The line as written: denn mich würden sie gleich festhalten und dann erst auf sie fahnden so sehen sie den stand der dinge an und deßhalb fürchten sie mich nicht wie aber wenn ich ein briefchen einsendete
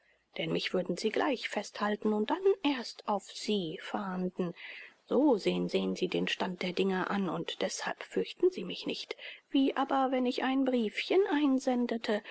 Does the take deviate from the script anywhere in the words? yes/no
yes